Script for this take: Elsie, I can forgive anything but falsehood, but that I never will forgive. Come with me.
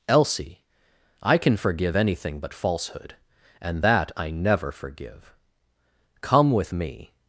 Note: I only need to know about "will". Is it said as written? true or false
false